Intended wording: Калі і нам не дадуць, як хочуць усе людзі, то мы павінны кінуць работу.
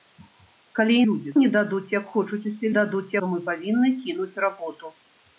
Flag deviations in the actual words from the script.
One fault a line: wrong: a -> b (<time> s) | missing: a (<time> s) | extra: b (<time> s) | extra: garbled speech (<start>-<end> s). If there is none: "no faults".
wrong: нам -> людзі (1.1 s)
wrong: людзі -> дадуць (2.8 s)